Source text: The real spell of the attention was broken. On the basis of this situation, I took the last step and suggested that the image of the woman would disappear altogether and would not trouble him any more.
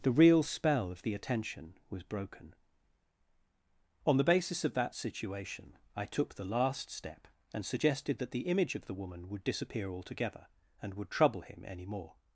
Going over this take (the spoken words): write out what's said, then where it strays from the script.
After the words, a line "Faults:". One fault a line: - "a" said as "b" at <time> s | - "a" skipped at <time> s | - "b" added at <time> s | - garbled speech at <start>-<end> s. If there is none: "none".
The real spell of the attention was broken. On the basis of that situation, I took the last step and suggested that the image of the woman would disappear altogether and would trouble him any more.
Faults:
- "this" said as "that" at 4.7 s
- "not" skipped at 11.1 s